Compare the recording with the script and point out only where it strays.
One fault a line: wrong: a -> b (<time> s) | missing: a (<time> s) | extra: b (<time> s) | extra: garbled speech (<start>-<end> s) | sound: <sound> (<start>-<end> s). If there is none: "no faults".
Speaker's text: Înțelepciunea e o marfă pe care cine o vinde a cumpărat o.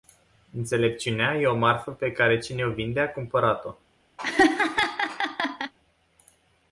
sound: laugh (4.2-5.7 s)